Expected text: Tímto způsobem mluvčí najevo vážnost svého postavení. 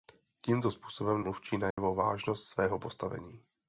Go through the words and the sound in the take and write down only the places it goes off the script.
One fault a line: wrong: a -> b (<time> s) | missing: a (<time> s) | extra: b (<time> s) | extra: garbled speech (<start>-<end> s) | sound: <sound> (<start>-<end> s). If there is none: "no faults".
sound: dropout (1.7-1.8 s)